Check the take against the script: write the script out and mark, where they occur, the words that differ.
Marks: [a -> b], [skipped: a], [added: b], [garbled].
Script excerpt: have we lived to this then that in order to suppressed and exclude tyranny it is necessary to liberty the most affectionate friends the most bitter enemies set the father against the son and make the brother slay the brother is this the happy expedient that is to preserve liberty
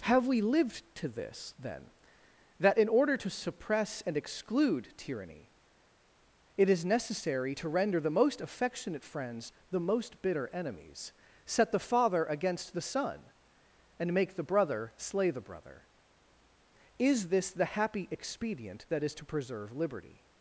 have we lived to this then that in order to [suppressed -> suppress] and exclude tyranny it is necessary to [liberty -> render] the most affectionate friends the most bitter enemies set the father against the son and make the brother slay the brother is this the happy expedient that is to preserve liberty